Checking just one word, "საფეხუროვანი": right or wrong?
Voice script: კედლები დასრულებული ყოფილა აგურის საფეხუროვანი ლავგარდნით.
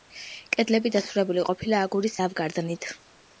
wrong